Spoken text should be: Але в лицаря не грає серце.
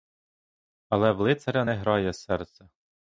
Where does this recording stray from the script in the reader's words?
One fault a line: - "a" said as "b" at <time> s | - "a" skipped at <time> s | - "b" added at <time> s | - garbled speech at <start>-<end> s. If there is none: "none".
none